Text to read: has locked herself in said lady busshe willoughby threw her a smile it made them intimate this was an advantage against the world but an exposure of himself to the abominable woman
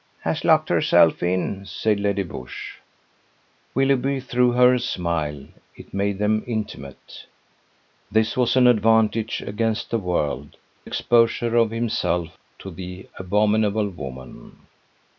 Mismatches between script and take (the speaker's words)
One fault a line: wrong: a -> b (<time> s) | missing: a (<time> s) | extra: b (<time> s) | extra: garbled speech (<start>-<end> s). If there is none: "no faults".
missing: but an (10.6 s)